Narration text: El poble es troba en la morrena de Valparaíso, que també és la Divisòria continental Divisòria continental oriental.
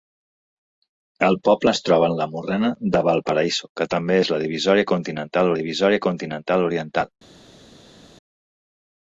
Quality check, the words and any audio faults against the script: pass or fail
pass